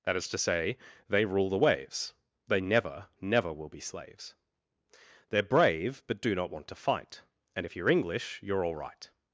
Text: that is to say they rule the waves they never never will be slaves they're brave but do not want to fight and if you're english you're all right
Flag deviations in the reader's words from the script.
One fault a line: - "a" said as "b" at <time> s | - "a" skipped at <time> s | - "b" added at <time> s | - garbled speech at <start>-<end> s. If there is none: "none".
none